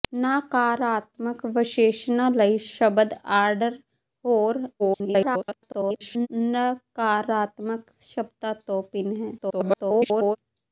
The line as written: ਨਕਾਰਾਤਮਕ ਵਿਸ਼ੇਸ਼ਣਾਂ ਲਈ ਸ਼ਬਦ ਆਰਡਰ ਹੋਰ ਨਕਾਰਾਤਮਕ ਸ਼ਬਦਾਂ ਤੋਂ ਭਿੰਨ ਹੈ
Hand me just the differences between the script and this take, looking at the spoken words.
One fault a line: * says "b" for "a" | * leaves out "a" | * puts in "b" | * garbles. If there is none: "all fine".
* garbles
* garbles